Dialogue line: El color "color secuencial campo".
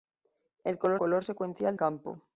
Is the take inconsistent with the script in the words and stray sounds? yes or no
no